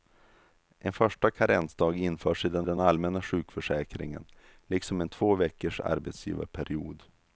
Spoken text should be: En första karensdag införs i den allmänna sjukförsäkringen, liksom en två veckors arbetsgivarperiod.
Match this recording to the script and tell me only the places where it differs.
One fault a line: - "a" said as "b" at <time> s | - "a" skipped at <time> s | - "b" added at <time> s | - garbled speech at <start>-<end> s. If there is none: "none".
- "den" added at 2.6 s